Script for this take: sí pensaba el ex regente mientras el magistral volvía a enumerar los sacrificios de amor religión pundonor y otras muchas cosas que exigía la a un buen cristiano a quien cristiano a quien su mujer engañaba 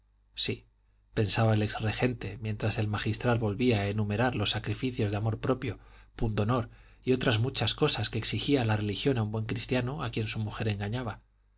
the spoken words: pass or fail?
fail